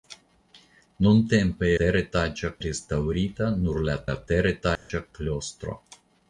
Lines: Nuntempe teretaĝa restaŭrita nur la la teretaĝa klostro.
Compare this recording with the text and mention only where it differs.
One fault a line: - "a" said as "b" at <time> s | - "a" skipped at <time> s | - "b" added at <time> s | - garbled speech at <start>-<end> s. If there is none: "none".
none